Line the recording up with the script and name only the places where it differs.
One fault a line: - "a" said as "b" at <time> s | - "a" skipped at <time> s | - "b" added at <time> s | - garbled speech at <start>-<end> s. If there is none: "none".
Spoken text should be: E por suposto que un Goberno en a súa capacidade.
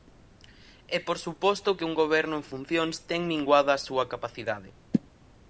- "funcións ten minguada" added at 2.5 s